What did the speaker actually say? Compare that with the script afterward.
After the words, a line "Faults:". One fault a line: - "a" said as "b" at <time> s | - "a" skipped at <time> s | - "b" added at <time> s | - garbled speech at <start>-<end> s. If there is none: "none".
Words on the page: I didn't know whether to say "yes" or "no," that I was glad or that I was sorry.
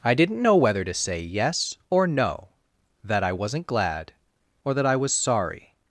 I didn't know whether to say "yes" or "no," that I wasn't glad or that I was sorry.
Faults:
- "was" said as "wasn't" at 3.3 s